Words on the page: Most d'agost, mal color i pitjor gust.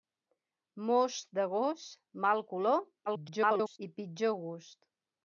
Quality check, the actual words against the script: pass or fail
fail